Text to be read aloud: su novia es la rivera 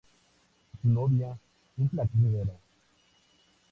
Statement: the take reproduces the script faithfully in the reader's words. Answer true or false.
true